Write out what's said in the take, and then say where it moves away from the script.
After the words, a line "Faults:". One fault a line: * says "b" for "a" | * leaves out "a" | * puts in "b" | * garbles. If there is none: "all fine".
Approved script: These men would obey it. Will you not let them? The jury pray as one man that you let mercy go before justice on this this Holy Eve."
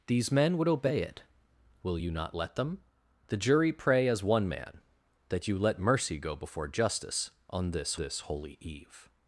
These men would obey it. Will you not let them? The jury pray as one man that you let mercy go before justice on this this Holy Eve."
Faults:
all fine